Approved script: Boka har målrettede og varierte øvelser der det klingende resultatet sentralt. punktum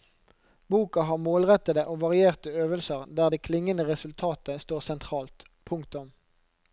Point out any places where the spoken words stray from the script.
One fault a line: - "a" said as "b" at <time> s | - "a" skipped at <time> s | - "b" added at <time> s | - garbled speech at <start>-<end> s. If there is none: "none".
- "står" added at 4.6 s